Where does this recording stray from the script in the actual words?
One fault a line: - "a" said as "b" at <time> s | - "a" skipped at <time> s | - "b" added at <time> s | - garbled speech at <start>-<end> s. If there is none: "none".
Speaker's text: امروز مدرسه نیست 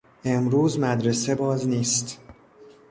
- "باز" added at 1.3 s